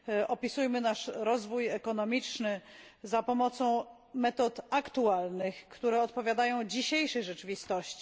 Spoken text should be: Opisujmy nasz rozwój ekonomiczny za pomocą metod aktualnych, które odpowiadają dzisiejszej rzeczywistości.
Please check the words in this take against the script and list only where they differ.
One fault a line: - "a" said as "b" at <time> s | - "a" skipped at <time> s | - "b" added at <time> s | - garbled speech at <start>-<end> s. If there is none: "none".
none